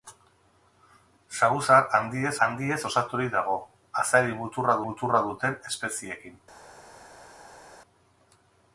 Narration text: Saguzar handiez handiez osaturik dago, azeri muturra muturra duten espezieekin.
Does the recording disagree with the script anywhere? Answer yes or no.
no